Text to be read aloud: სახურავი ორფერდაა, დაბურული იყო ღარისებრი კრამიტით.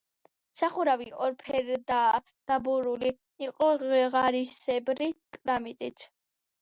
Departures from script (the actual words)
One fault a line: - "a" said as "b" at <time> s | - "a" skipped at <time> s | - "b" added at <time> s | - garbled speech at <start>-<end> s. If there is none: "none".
none